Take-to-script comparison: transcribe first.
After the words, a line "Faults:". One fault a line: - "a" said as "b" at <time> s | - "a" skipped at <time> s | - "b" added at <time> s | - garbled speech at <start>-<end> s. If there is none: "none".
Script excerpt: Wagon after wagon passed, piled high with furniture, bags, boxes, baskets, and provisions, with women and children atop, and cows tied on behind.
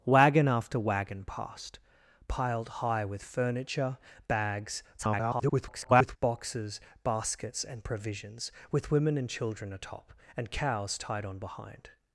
Wagon after wagon passed, piled high with furniture, bags, [garbled] boxes, baskets, and provisions, with women and children atop, and cows tied on behind.
Faults:
- garbled speech at 5.0-6.2 s